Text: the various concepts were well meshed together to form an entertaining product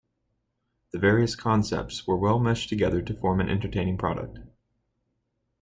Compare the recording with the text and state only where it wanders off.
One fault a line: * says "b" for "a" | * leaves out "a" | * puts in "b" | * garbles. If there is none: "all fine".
all fine